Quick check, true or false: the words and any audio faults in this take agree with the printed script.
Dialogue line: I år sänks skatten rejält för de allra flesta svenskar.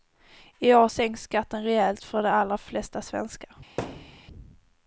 false